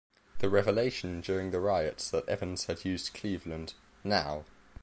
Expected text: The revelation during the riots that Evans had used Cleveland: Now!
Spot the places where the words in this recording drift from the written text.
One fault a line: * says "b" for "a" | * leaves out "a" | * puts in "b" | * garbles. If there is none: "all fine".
all fine